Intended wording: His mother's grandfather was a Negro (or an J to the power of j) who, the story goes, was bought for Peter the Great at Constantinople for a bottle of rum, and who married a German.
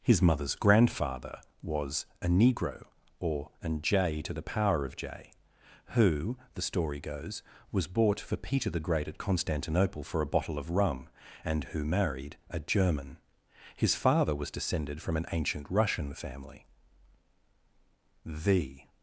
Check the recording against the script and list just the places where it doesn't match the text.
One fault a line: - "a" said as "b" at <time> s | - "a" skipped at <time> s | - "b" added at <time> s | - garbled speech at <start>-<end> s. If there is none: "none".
- "His father was descended from an ancient Russian family The" added at 13.8 s